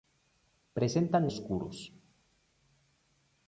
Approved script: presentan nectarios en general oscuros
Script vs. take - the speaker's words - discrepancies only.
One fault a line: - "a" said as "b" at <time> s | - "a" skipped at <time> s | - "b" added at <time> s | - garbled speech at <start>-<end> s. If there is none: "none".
- "nectarios en general" skipped at 1.3 s